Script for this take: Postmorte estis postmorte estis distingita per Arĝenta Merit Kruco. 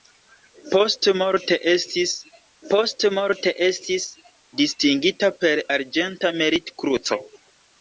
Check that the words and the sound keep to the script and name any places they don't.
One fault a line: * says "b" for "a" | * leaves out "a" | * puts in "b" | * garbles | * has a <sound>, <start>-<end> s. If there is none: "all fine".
all fine